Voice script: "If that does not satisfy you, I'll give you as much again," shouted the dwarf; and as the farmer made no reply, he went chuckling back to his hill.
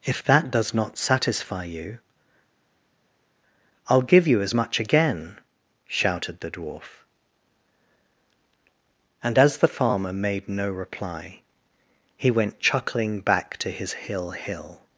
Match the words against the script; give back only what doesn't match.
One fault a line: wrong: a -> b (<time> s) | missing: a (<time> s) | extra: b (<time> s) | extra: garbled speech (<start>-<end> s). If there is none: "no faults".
extra: hill (14.3 s)